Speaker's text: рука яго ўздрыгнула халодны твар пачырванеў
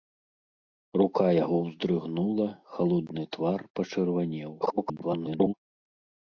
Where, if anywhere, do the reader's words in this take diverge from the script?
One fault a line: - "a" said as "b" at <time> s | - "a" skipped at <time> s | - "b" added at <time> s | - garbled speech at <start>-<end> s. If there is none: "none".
- garbled speech at 4.6-5.5 s